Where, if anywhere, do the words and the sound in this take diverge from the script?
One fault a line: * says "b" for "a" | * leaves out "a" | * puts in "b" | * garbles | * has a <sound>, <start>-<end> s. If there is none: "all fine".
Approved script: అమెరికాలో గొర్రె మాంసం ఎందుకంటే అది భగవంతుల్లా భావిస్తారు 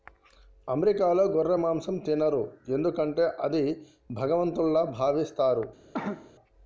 * puts in "తినరు"
* has a cough, 5.9-6.3 s